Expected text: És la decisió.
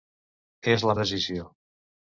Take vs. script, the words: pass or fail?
pass